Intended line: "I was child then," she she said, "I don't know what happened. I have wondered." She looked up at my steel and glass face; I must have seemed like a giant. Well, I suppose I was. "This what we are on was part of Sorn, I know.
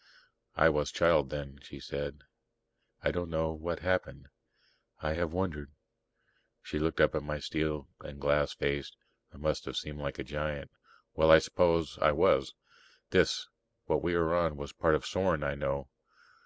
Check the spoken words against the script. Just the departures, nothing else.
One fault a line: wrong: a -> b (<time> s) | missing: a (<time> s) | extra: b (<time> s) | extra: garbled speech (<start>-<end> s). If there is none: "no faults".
missing: she (1.8 s)